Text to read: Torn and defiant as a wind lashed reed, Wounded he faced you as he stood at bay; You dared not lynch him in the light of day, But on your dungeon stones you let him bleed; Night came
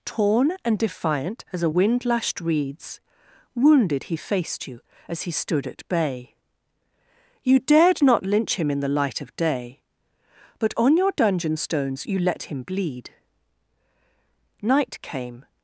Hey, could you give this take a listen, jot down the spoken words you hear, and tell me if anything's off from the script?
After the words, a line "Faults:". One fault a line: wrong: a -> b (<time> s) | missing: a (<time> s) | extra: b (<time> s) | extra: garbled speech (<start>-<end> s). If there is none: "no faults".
Torn and defiant as a wind lashed reeds, Wounded he faced you as he stood at bay; You dared not lynch him in the light of day, But on your dungeon stones you let him bleed; Night came
Faults:
wrong: reed -> reeds (2.4 s)